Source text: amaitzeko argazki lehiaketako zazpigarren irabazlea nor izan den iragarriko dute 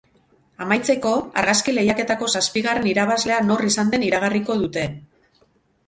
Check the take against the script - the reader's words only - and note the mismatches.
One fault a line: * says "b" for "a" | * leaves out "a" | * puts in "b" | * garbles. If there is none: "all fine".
all fine